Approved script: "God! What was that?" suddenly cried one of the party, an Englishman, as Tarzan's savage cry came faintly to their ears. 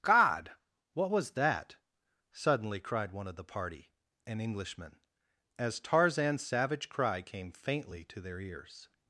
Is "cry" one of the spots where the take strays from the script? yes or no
no